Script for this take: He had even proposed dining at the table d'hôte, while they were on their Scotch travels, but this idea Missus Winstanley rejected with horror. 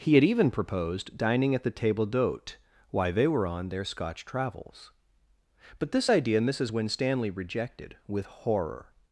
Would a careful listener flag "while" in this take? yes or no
yes